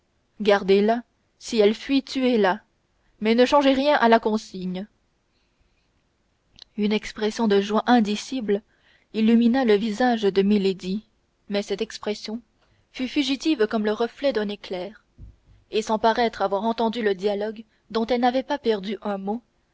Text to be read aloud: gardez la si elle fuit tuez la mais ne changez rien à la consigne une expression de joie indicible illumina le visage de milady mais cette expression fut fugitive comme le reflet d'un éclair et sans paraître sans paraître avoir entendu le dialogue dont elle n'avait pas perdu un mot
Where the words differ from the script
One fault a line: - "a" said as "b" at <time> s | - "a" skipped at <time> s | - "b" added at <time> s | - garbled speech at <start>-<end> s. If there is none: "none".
- "sans paraître" skipped at 16.4 s